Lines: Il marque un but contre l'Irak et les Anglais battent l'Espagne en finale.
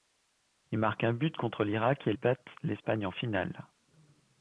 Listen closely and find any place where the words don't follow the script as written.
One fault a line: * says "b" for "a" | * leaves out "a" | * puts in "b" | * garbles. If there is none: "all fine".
* leaves out "les Anglais"